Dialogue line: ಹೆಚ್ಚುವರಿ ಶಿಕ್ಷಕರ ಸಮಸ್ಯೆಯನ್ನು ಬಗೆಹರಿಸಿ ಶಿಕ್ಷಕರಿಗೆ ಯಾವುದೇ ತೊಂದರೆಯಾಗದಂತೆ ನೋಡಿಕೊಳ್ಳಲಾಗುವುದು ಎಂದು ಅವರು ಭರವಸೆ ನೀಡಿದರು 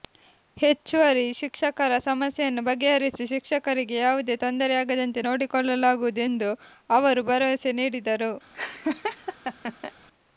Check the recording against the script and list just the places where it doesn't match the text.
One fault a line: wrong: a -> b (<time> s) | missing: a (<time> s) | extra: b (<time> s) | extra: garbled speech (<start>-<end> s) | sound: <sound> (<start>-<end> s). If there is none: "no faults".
sound: laugh (8.5-9.9 s)